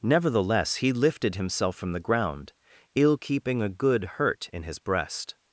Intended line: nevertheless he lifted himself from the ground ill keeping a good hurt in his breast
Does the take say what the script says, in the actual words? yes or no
yes